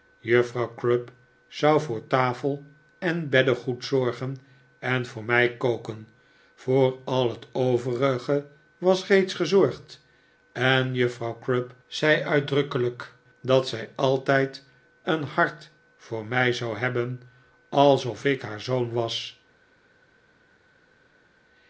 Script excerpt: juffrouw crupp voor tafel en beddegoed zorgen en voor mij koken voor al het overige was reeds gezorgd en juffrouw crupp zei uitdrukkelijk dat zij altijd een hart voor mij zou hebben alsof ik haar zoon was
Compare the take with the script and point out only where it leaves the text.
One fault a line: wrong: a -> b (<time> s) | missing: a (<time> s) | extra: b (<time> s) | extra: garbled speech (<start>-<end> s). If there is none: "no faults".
extra: zou (1.5 s)